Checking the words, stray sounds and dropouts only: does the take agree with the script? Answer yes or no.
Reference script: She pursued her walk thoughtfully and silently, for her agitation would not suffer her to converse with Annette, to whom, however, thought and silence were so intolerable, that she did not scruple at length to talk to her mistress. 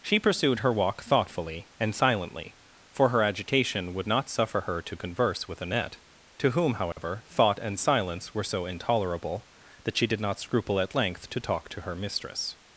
no